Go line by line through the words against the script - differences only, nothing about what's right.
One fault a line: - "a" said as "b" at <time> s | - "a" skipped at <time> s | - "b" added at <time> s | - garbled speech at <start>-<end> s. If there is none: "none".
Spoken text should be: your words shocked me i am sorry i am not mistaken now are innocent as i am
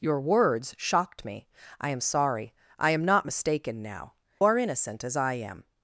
none